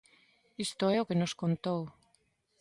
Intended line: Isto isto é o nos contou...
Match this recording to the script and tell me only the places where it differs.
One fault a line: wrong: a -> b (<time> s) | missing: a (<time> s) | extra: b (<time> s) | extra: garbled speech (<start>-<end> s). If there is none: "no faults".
missing: isto (0.8 s)
extra: que (1.1 s)